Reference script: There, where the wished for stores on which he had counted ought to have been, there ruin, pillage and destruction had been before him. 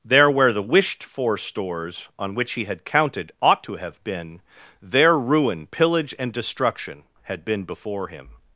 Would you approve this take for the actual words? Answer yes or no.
yes